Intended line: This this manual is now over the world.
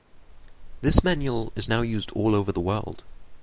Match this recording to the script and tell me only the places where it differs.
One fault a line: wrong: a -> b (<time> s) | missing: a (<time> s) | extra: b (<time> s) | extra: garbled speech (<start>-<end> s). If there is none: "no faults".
missing: this (1.0 s)
extra: used all (1.8 s)